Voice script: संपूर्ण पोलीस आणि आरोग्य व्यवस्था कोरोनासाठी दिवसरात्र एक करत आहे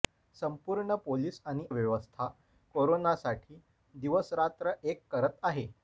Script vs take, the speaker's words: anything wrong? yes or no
yes